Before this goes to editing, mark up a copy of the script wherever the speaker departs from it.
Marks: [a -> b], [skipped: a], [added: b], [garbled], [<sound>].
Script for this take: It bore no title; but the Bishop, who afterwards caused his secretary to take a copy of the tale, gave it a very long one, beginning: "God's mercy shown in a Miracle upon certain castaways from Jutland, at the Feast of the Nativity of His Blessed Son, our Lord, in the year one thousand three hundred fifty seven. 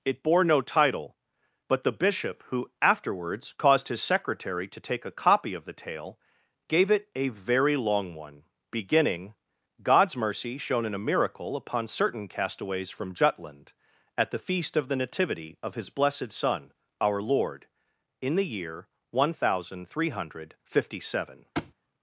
It bore no title; but the Bishop, who afterwards caused his secretary to take a copy of the tale, gave it a very long one, beginning: "God's mercy shown in a Miracle upon certain castaways from Jutland, at the Feast of the Nativity of His Blessed Son, our Lord, in the year one thousand three hundred fifty seven. [thud]